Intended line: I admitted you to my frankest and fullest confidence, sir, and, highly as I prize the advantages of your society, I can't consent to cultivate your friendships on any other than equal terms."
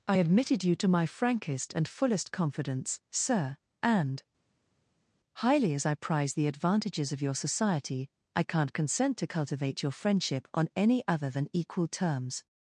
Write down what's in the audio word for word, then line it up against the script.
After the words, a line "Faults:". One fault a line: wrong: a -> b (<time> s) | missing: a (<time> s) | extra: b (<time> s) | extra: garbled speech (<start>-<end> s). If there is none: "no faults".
I admitted you to my frankest and fullest confidence, sir, and, highly as I prize the advantages of your society, I can't consent to cultivate your friendship on any other than equal terms."
Faults:
wrong: friendships -> friendship (9.9 s)